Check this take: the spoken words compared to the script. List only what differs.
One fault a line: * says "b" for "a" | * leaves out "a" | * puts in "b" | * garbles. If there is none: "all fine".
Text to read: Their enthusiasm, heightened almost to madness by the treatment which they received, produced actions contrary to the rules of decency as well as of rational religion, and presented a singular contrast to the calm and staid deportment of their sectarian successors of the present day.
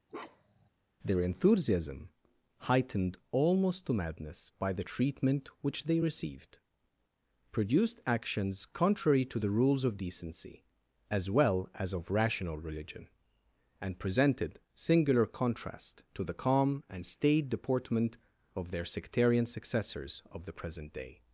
* leaves out "a"